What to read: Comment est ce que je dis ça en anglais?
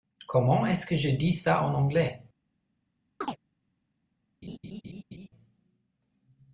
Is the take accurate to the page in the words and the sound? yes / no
no